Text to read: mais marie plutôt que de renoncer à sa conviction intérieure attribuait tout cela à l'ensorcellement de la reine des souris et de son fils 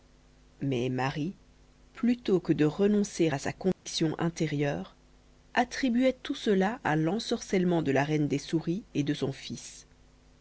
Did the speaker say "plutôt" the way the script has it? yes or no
yes